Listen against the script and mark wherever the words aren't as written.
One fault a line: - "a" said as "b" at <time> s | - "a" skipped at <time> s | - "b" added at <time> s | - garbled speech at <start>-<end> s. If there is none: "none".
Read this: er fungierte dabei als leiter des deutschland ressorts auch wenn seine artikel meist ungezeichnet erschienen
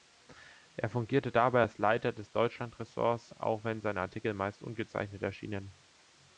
none